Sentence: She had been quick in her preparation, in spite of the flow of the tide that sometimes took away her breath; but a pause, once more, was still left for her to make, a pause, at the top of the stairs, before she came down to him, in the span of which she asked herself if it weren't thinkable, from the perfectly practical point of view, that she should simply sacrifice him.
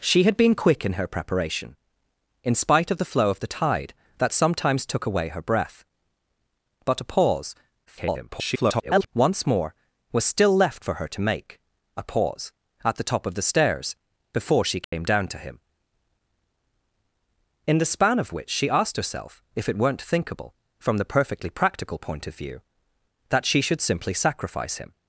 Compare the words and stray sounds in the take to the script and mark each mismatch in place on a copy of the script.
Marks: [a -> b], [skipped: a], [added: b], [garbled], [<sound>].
She had been quick in her preparation, in spite of the flow of the tide that sometimes took away her breath; but a pause, [garbled] once more, was still left for her to make, a pause, at the top of the stairs, before she came [dropout] down to him, in the span of which she asked herself if it weren't thinkable, from the perfectly practical point of view, that she should simply sacrifice him.